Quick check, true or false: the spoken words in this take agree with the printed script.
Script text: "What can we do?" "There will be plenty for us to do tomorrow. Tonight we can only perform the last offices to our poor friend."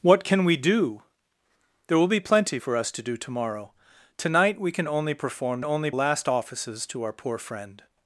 false